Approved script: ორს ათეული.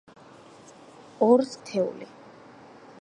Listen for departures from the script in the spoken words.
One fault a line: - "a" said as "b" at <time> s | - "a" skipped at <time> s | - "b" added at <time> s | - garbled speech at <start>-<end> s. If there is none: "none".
none